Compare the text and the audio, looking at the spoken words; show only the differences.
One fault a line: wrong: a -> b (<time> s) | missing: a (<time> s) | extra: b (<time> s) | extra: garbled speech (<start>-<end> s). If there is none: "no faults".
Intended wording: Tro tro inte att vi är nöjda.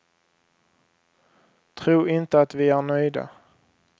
missing: tro (2.1 s)